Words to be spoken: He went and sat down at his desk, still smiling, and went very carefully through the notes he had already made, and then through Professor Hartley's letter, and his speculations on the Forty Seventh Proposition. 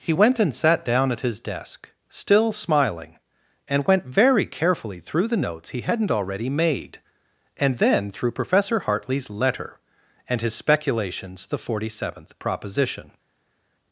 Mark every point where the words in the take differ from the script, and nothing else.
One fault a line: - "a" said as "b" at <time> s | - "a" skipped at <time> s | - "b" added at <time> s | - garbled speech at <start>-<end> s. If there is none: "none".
- "had" said as "hadn't" at 5.8 s
- "on" skipped at 11.5 s